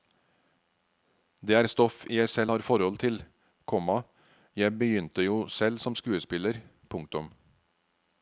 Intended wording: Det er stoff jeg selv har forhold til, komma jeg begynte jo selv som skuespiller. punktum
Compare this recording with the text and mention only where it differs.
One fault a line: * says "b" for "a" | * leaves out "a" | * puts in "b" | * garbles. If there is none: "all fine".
all fine